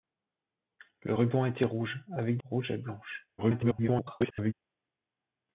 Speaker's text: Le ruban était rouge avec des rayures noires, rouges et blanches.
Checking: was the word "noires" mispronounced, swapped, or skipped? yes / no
yes